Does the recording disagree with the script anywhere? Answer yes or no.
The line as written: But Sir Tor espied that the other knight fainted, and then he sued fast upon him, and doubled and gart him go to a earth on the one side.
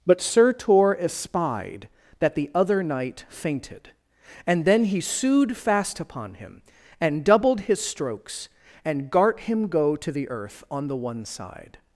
yes